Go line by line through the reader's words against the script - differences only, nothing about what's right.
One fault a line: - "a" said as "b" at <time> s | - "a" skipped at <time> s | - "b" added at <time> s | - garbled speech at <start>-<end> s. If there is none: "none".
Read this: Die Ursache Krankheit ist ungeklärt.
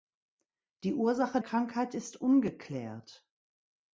none